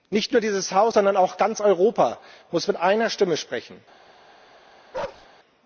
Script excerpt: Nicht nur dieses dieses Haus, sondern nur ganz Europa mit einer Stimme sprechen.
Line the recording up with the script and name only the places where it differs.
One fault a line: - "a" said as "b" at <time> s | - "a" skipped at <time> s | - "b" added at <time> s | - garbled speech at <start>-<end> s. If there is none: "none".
- "dieses" skipped at 0.7 s
- "nur" said as "auch" at 1.2 s
- "muss" added at 2.5 s